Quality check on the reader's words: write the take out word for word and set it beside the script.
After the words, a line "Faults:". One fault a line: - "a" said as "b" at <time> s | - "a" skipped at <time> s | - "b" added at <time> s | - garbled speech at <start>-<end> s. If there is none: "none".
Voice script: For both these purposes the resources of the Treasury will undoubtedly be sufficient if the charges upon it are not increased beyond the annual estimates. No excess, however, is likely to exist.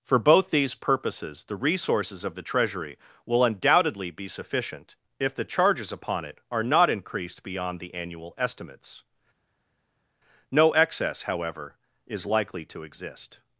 For both these purposes the resources of the Treasury will undoubtedly be sufficient if the charges upon it are not increased beyond the annual estimates. No excess, however, is likely to exist.
Faults:
none